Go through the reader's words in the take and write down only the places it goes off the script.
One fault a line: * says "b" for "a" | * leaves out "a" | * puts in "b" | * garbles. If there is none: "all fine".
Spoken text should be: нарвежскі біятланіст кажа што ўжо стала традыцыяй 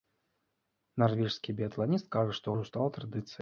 all fine